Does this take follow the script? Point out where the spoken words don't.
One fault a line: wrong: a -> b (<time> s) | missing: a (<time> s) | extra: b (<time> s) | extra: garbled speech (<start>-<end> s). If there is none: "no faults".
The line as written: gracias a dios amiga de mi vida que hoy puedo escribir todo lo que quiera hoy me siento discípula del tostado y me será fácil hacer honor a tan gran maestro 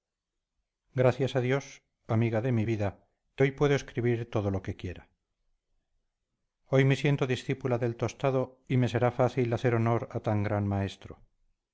no faults